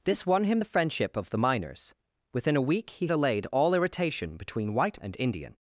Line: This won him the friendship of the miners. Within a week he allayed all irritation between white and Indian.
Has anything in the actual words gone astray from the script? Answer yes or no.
no